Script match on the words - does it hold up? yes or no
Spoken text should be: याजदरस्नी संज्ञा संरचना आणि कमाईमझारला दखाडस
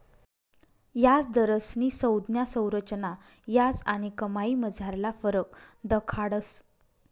no